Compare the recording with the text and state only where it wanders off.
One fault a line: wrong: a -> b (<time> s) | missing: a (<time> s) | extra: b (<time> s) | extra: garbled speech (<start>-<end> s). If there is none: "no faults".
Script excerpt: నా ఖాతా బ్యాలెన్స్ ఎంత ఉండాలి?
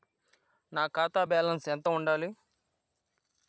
no faults